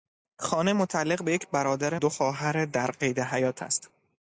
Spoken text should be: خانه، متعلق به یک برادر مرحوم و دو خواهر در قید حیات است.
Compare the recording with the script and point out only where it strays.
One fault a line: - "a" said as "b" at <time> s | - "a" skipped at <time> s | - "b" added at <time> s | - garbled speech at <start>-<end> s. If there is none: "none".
- "مرحوم و" skipped at 2.0 s